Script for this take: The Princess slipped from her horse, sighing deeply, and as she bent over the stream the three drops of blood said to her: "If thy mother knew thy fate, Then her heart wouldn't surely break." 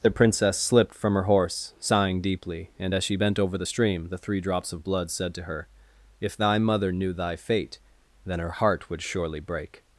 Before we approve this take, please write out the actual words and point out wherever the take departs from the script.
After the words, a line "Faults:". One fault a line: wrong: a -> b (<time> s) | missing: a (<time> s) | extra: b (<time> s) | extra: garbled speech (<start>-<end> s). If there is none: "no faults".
The Princess slipped from her horse, sighing deeply, and as she bent over the stream the three drops of blood said to her: "If thy mother knew thy fate, Then her heart would surely break."
Faults:
wrong: wouldn't -> would (8.9 s)